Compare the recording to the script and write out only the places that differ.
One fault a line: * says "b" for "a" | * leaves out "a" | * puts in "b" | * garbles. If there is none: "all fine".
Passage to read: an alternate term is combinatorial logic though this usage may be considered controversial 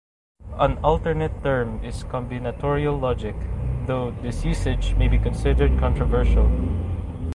all fine